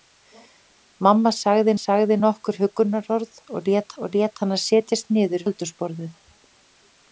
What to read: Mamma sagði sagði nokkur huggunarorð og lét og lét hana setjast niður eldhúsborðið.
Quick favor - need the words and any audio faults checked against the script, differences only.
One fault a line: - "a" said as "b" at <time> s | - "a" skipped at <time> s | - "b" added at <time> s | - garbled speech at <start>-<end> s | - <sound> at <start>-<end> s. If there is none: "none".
none